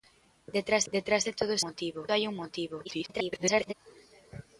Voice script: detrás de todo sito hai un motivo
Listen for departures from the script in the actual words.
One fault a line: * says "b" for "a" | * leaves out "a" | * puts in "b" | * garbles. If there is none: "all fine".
* puts in "detrás"
* says "motivo" for "sito"
* garbles